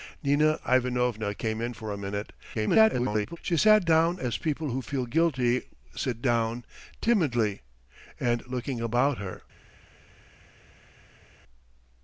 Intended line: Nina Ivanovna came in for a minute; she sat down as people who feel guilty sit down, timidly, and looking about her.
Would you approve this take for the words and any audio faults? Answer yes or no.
no